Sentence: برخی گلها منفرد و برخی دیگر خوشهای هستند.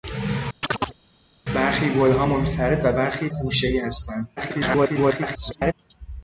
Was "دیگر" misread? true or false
true